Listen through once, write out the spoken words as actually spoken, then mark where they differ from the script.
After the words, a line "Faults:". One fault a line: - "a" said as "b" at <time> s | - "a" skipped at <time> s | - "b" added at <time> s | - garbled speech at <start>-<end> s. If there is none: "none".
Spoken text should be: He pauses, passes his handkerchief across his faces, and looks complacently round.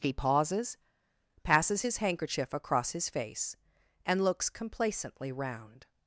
He pauses, passes his handkerchief across his face, and looks complacently round.
Faults:
- "faces" said as "face" at 3.1 s